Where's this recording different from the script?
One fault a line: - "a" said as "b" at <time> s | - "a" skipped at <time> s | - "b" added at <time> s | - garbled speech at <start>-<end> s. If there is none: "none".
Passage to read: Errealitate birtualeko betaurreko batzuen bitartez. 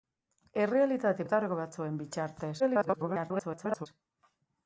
- "birtualeko" skipped at 1.2 s
- garbled speech at 2.6-3.9 s